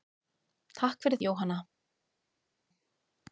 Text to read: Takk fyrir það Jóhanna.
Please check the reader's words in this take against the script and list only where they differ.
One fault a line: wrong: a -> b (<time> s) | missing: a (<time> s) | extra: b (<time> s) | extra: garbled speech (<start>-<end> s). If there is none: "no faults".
missing: það (1.2 s)